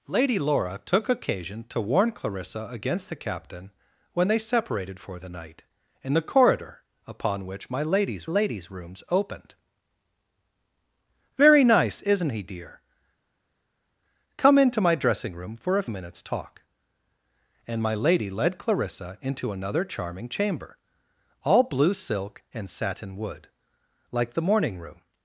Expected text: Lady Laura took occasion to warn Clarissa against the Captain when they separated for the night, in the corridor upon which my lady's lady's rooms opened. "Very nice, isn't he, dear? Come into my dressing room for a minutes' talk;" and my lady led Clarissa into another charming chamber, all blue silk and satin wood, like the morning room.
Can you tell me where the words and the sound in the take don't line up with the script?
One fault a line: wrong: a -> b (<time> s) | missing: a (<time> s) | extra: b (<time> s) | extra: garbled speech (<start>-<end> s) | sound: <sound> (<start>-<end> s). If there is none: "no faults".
no faults